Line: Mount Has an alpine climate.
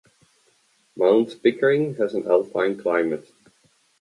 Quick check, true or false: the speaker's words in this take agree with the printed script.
false